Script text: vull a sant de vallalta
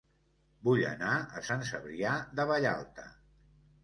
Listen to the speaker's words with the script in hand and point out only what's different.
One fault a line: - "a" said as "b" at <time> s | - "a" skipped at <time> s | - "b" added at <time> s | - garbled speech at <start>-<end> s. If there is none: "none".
- "anar" added at 0.9 s
- "cebrià" added at 1.7 s